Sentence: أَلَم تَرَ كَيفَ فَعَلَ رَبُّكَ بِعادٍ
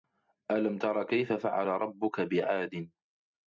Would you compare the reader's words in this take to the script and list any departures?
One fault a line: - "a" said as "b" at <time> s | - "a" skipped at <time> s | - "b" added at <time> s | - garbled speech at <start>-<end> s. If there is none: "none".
none